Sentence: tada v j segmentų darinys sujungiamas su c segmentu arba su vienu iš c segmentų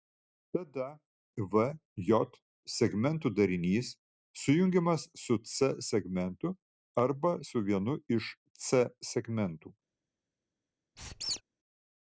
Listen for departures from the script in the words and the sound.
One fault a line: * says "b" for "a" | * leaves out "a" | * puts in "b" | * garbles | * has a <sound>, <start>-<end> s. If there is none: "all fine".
* has a squeak, 11.0-11.4 s